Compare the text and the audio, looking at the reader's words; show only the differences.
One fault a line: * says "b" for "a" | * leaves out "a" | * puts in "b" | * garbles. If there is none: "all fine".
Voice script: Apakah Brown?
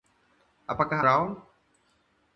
all fine